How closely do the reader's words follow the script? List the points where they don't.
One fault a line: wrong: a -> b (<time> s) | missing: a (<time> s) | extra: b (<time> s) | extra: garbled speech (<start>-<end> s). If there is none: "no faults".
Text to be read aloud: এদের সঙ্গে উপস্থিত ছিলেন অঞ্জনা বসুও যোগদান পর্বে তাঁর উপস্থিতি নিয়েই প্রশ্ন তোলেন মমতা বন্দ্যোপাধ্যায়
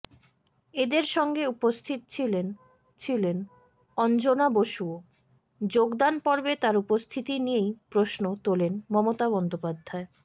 extra: ছিলেন (3.0 s)